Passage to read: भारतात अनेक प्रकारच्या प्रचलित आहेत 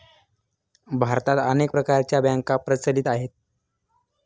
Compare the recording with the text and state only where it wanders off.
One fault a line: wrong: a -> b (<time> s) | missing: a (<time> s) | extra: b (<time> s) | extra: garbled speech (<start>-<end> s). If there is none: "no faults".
extra: बँका (2.2 s)